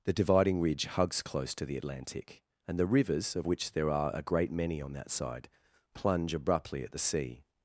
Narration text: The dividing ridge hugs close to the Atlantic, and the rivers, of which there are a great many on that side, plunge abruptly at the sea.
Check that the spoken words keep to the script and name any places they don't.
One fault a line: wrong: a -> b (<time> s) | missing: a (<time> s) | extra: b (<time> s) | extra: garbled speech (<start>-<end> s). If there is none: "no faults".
no faults